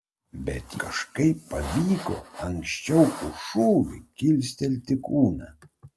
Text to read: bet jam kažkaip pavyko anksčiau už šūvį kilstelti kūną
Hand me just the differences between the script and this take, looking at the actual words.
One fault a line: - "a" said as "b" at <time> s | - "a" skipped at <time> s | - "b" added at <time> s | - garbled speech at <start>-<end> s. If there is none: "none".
- "jam" skipped at 0.7 s